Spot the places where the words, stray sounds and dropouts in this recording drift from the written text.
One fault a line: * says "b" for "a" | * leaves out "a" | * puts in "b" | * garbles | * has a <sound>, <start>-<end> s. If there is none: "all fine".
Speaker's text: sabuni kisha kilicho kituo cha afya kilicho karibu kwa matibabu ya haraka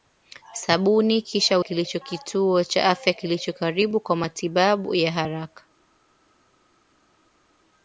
all fine